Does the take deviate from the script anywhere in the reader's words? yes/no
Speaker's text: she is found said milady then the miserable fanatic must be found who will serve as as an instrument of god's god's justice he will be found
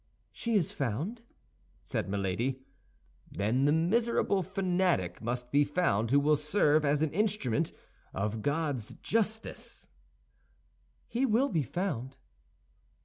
yes